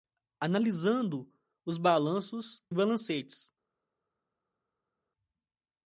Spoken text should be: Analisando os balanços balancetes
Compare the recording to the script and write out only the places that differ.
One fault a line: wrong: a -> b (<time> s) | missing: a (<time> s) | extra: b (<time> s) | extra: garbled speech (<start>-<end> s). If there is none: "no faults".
no faults